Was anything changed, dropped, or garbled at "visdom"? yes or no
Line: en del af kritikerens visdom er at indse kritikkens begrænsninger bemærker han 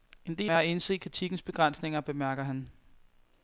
yes